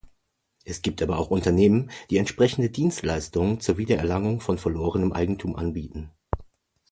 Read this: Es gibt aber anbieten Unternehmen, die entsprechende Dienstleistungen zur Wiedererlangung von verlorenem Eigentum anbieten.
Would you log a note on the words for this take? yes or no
yes